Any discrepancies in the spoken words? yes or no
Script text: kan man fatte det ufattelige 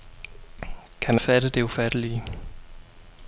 yes